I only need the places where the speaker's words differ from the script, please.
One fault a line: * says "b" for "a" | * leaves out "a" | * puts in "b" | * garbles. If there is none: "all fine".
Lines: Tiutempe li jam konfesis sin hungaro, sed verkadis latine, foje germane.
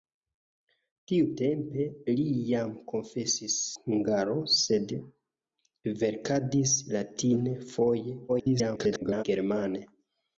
* leaves out "sin"
* garbles